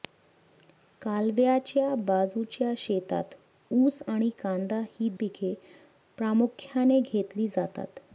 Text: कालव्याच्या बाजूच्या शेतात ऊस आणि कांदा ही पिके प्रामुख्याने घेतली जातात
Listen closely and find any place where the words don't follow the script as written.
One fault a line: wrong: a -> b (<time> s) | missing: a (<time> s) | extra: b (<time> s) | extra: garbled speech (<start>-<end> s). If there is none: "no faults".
no faults